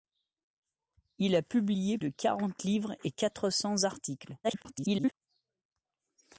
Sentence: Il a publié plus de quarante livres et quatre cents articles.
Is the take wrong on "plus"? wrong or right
wrong